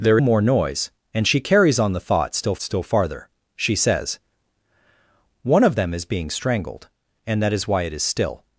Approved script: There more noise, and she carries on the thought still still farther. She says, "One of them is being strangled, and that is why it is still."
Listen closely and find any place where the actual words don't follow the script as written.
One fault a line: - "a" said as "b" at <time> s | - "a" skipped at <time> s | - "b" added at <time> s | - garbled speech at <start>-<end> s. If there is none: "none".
none